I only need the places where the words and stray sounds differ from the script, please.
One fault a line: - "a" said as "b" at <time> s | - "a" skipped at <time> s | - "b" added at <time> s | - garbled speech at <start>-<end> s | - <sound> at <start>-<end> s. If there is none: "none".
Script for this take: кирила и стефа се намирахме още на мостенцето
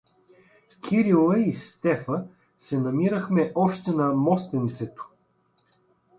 none